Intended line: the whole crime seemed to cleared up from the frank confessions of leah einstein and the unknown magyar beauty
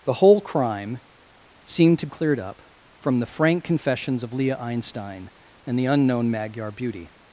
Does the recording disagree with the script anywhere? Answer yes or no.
no